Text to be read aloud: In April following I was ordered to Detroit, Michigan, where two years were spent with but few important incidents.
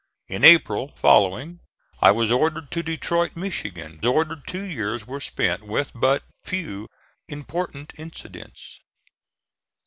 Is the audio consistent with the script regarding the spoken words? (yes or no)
no